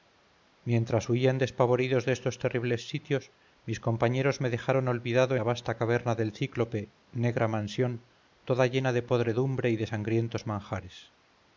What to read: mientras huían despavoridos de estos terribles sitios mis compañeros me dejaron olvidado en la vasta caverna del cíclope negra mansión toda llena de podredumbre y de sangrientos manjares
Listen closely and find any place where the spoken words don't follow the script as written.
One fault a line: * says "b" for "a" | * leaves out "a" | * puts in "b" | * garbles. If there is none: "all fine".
* leaves out "en"